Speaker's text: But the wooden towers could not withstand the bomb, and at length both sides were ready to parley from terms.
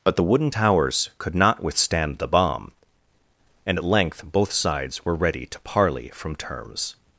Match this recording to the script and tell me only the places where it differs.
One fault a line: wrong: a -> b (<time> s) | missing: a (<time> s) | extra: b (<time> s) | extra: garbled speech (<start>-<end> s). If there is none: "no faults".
no faults